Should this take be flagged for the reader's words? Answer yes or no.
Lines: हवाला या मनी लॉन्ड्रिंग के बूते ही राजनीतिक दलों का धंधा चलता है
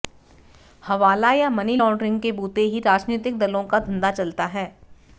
no